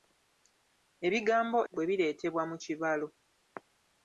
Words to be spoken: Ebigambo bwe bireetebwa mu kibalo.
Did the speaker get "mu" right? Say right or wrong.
right